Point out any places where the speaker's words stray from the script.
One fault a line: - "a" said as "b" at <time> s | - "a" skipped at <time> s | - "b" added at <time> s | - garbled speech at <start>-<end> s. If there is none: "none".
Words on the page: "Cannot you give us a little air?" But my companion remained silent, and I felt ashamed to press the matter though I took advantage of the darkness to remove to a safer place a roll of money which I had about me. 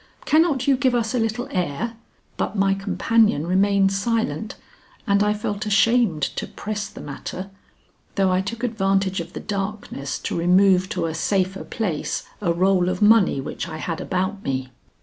none